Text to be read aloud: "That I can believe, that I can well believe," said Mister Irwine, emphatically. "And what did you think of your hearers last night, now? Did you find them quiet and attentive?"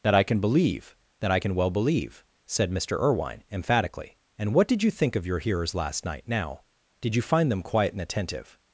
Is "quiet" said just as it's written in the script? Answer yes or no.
yes